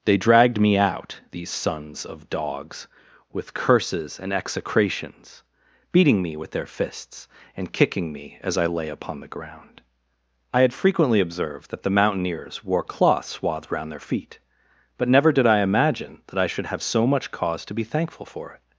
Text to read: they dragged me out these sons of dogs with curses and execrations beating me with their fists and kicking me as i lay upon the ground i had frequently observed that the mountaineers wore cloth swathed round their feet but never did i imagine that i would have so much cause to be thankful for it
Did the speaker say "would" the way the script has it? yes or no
no